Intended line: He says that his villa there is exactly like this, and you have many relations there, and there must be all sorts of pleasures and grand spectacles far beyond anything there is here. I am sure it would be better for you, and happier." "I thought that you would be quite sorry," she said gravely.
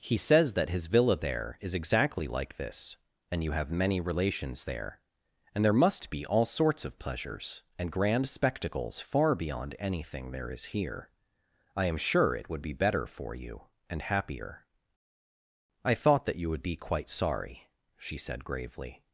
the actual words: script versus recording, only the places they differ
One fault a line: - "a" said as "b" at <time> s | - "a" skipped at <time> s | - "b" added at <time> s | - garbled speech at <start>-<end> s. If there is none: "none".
none